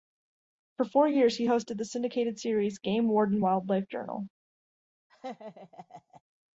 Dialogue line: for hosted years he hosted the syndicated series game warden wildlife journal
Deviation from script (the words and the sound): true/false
true